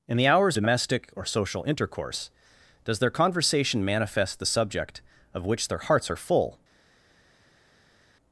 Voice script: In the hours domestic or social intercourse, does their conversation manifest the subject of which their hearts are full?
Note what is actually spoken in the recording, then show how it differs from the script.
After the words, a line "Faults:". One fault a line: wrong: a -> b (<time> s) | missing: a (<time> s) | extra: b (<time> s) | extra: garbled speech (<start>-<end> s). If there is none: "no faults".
In the hours domestic or social intercourse, does their conversation manifest the subject of which their hearts are full?
Faults:
no faults